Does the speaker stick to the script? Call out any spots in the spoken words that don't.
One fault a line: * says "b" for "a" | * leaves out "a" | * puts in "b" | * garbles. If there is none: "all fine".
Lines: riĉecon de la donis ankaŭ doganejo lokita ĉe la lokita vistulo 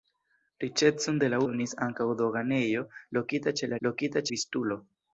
all fine